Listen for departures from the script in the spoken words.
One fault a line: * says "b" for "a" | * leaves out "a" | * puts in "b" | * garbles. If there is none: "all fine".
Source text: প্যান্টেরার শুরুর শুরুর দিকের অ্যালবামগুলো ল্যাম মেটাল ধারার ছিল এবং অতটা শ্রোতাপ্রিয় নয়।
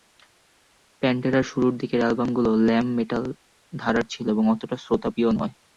* leaves out "শুরুর"